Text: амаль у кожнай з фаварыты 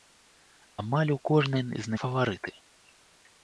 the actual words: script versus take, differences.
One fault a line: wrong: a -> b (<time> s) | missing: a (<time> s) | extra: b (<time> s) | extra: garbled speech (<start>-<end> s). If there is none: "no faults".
no faults